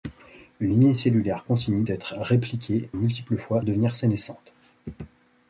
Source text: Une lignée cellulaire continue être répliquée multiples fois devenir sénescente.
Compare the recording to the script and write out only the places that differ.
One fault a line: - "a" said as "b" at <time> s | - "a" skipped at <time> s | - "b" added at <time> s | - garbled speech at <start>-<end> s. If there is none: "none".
none